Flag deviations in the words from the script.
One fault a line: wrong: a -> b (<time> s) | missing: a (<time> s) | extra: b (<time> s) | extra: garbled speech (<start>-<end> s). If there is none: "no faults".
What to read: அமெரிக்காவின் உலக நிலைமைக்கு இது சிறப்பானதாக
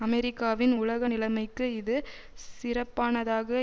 no faults